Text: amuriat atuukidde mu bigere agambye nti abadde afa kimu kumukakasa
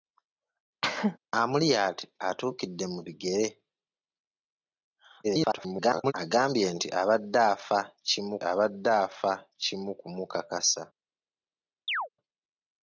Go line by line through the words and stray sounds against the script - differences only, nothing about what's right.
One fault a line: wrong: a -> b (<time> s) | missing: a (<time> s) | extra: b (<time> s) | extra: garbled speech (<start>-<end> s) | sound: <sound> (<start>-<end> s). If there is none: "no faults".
sound: cough (0.8-1.2 s)
extra: garbled speech (5.2-6.1 s)
extra: abadde afa kimu (8.5 s)
sound: chirp (11.9-12.1 s)